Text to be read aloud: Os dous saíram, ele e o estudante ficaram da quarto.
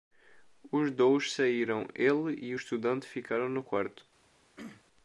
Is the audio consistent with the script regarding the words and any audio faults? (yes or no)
no